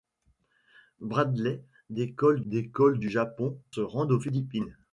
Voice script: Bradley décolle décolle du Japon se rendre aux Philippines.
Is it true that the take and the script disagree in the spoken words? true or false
false